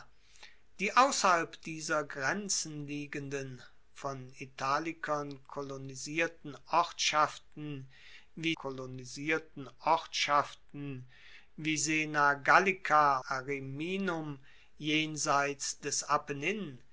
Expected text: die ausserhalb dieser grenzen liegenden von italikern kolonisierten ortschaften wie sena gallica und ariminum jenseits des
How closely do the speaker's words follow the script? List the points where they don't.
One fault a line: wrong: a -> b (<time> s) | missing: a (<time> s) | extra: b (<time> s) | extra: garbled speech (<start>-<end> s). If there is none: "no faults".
extra: kolonisierten ortschaften wie (8.5 s)
missing: und (13.2 s)